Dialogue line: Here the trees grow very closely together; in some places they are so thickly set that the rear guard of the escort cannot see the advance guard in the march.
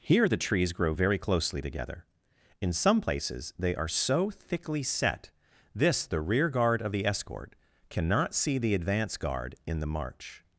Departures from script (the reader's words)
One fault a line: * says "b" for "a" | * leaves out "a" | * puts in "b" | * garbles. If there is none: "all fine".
* says "this" for "that"